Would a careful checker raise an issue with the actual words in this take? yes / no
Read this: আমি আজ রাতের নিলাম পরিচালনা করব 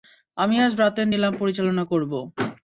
no